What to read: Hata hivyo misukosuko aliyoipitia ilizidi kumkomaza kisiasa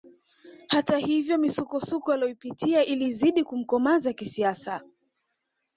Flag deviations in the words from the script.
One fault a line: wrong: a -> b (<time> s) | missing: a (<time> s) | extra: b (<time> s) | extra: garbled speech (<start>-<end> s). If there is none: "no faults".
no faults